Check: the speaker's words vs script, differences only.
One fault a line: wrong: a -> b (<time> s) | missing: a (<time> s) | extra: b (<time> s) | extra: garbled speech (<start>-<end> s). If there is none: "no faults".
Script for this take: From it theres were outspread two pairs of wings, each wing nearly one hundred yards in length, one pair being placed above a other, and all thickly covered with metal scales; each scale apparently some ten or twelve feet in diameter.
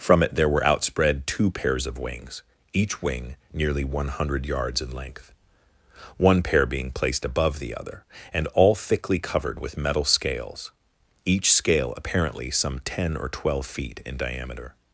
wrong: theres -> there (0.3 s)
wrong: a -> the (7.6 s)